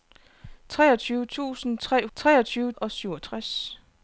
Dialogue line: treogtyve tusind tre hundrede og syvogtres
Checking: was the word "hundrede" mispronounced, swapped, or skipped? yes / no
yes